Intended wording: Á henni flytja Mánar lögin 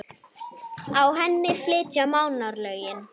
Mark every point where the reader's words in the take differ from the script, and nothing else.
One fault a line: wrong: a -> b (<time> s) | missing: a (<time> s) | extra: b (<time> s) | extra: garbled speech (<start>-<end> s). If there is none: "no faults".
no faults